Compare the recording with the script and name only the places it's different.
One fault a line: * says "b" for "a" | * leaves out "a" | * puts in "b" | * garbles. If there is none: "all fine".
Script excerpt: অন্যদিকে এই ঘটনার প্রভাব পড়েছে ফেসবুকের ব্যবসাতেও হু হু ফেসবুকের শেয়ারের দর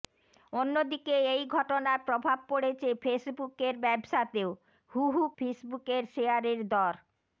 all fine